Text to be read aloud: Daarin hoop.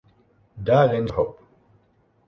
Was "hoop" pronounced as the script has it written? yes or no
yes